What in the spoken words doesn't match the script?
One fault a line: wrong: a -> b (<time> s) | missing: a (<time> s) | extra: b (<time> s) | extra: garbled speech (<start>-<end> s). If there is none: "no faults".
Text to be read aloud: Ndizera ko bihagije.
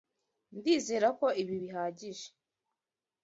extra: ibi (1.4 s)